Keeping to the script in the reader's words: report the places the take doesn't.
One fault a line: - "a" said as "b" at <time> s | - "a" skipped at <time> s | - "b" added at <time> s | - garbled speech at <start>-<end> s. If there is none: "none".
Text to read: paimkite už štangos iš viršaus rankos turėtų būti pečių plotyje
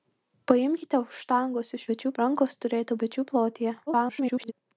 - "viršaus" said as "pečių" at 1.9 s
- "būti" skipped at 3.0 s
- garbled speech at 3.9-4.5 s